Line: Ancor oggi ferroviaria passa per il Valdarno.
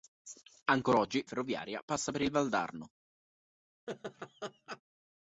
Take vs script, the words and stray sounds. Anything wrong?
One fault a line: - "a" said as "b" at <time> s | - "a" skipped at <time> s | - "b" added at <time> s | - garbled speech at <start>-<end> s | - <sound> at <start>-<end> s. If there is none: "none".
- laugh at 3.9-4.8 s